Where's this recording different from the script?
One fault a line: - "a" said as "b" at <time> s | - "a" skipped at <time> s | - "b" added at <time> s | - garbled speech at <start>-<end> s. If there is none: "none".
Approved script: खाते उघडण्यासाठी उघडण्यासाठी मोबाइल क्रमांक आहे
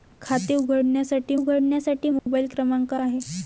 none